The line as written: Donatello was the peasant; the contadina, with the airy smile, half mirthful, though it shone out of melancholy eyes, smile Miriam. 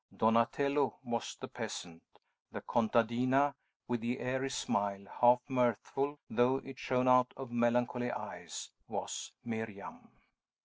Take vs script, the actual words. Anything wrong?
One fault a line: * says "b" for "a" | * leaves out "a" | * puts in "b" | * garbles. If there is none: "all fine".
* says "was" for "smile"